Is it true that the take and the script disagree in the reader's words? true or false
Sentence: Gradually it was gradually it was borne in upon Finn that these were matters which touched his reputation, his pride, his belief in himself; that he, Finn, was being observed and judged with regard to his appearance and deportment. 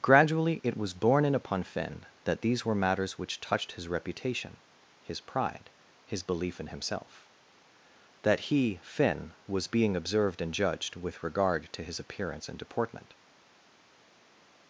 true